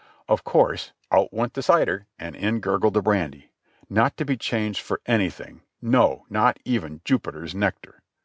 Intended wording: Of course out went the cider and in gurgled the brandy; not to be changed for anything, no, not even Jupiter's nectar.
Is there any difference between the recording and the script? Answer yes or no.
no